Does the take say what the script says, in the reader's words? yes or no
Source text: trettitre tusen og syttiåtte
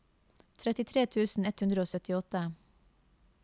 no